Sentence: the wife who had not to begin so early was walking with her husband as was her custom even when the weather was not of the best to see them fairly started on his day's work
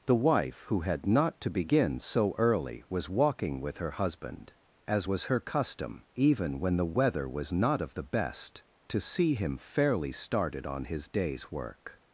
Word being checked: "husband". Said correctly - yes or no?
yes